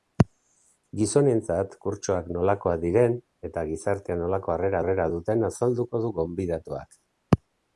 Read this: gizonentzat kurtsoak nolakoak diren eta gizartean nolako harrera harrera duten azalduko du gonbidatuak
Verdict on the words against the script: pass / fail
pass